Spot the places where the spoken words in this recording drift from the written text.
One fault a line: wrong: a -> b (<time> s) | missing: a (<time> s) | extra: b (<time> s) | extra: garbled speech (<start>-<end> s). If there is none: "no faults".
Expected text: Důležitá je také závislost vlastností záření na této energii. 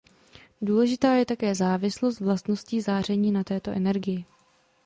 no faults